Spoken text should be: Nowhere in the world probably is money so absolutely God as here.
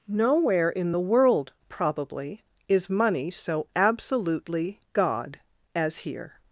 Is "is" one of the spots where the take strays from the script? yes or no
no